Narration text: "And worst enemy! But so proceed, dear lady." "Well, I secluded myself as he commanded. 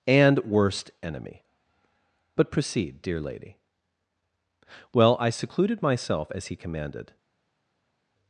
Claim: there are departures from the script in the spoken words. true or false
true